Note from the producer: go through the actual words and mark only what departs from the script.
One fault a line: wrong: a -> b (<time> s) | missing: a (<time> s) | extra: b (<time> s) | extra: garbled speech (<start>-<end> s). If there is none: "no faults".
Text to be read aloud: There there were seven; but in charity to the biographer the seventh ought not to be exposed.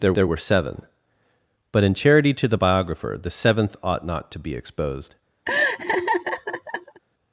no faults